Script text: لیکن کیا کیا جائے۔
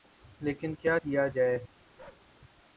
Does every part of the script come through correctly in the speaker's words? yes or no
yes